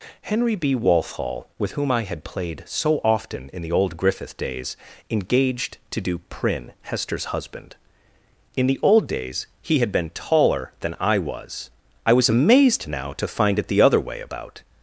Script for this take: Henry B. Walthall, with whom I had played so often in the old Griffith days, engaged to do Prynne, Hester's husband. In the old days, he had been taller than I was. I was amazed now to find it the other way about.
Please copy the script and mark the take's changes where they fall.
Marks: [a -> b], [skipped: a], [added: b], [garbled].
Henry B. Walthall, with whom I had played so often in the old Griffith days, engaged to do Prynne, Hester's husband. In the old days, he had been taller than I was. I was amazed now to find it the other way about.